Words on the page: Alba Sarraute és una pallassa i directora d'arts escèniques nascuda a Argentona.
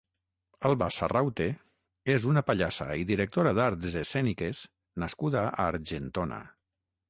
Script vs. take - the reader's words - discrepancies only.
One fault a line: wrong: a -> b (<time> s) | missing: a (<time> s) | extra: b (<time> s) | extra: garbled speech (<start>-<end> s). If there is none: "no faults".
no faults